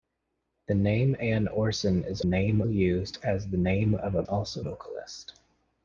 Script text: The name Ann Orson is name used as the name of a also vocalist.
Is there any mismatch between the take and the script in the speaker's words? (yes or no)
no